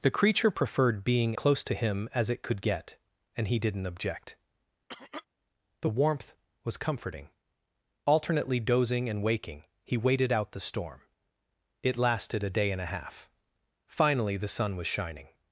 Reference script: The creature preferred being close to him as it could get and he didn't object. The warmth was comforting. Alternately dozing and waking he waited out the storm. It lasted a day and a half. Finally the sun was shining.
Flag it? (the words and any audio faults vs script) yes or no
yes